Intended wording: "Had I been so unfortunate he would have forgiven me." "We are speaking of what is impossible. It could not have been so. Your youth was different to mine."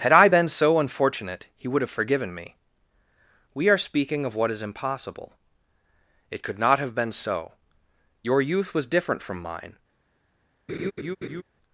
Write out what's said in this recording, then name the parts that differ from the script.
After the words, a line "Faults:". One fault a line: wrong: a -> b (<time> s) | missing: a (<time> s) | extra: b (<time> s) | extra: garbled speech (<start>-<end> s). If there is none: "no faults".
"Had I been so unfortunate he would have forgiven me." "We are speaking of what is impossible. It could not have been so. Your youth was different from mine."
Faults:
wrong: to -> from (9.2 s)